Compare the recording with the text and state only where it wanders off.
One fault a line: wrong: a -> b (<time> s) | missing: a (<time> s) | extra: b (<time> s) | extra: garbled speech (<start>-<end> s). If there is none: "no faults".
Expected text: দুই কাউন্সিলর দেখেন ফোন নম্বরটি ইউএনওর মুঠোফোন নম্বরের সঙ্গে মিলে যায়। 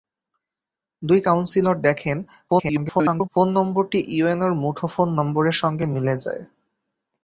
extra: garbled speech (2.5-3.3 s)